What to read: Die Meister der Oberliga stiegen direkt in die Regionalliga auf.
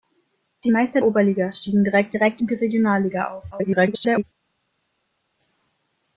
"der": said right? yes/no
no